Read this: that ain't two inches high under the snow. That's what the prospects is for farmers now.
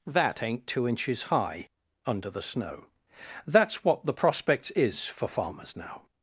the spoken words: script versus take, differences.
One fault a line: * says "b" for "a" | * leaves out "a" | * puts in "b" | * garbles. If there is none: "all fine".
all fine